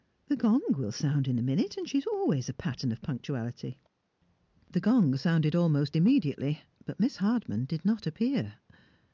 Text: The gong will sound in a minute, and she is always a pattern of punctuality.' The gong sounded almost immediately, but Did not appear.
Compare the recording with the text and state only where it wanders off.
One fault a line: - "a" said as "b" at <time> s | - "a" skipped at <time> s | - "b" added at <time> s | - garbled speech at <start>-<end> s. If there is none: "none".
- "Miss Hardman" added at 7.0 s